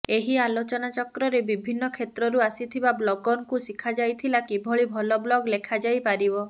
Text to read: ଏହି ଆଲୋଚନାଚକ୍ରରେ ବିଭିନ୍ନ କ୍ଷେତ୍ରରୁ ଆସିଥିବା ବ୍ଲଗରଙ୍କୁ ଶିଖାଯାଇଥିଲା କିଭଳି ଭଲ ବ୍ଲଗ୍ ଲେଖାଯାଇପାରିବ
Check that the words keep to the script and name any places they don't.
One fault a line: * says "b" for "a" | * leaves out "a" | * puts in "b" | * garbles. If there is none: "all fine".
all fine